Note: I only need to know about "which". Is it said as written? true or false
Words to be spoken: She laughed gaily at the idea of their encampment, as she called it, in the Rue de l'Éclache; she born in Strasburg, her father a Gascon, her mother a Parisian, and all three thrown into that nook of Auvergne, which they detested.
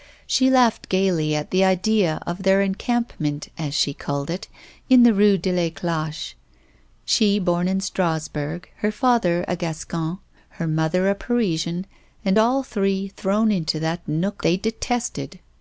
false